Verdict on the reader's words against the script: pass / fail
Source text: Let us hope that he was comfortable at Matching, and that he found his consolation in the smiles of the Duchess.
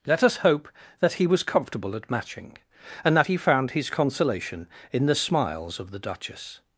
pass